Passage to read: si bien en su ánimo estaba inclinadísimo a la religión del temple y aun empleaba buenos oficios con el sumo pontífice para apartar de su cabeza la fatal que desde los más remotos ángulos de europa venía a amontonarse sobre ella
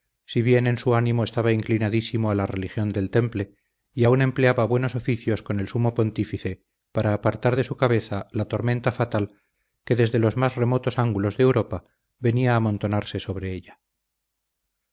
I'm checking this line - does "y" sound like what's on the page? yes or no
yes